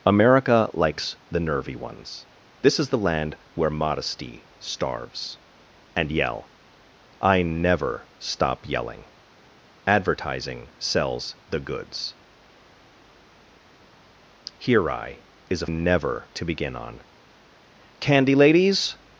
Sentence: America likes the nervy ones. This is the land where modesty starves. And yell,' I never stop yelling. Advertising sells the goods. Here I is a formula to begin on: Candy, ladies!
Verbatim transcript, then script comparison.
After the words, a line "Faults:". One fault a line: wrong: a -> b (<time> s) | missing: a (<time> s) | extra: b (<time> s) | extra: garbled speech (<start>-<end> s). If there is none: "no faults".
America likes the nervy ones. This is the land where modesty starves. And yell,' I never stop yelling. Advertising sells the goods. Here I is a never to begin on: Candy, ladies!
Faults:
wrong: formula -> never (15.6 s)